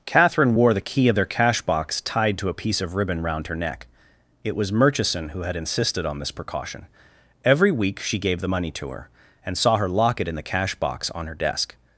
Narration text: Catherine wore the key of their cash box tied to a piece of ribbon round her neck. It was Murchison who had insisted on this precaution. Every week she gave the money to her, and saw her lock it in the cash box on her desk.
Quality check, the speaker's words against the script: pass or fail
pass